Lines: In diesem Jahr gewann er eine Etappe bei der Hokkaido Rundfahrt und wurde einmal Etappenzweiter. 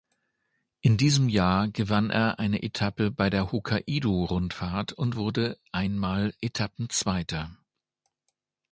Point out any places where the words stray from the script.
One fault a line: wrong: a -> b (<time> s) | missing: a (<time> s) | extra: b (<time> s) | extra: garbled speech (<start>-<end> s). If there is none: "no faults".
no faults